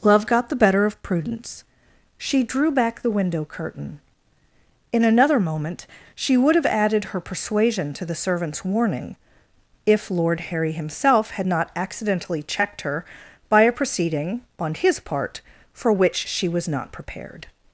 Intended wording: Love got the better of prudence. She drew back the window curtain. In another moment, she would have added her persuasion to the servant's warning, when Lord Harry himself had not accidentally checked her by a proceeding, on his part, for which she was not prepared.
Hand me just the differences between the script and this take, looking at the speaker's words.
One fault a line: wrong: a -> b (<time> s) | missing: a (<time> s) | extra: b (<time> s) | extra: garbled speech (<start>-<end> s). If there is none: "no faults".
wrong: when -> if (9.8 s)